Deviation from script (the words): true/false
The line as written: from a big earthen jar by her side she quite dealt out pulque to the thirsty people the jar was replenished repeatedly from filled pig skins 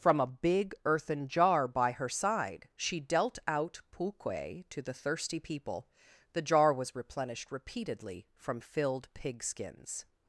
true